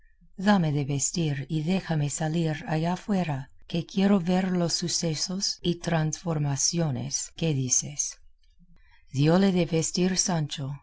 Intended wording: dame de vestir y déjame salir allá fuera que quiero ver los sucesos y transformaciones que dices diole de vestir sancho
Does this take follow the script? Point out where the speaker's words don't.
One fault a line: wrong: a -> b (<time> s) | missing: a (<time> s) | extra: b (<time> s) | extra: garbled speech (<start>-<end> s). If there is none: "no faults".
no faults